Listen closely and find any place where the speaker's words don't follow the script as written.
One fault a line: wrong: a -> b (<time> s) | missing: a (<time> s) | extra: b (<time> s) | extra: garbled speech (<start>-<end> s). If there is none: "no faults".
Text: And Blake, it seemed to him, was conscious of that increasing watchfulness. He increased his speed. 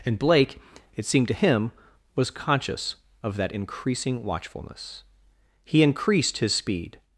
no faults